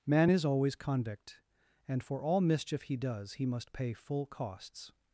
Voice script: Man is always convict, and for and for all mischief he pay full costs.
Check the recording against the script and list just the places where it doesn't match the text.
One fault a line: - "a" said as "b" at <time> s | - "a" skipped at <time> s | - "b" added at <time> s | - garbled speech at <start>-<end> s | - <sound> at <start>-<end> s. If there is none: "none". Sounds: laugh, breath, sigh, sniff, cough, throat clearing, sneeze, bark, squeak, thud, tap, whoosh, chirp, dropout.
- "and for" skipped at 2.2 s
- "does he must" added at 3.0 s